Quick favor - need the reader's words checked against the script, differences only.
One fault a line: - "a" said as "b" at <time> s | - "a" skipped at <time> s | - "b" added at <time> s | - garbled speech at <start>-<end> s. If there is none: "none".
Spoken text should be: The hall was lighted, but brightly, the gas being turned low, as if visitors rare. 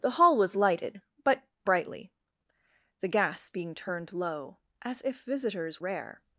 none